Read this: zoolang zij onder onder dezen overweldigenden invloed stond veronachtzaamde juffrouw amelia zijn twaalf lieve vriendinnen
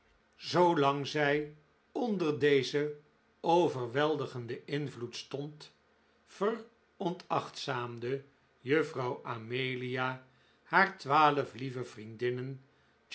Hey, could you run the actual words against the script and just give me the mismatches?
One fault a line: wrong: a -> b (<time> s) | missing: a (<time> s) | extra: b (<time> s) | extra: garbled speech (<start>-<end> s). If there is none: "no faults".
missing: onder (2.4 s)
wrong: zijn -> haar (10.6 s)